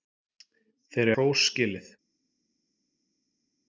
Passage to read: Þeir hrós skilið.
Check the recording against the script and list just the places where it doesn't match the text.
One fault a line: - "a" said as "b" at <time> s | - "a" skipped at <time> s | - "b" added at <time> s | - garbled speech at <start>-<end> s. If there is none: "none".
none